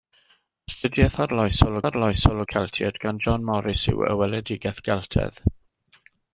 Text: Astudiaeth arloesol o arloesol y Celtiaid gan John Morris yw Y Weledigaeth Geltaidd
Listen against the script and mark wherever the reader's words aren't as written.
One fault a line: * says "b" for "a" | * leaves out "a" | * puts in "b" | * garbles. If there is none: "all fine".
all fine